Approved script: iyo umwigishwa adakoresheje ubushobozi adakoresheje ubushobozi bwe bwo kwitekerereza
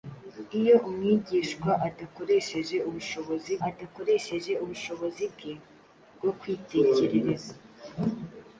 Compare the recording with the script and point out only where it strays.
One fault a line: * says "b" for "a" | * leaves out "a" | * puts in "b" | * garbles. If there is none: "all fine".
all fine